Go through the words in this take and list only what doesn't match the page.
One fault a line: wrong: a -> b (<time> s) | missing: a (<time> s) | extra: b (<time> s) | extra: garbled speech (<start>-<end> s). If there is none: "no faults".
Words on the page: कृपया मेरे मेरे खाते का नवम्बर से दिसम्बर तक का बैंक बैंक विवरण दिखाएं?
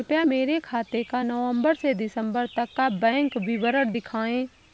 missing: मेरे (0.6 s)
missing: बैंक (3.4 s)